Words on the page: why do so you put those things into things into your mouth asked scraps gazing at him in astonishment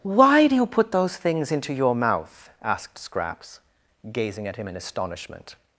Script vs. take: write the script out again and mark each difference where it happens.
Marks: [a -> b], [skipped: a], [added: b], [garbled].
why do [skipped: so] you put those things into [skipped: things into] your mouth asked scraps gazing at him in astonishment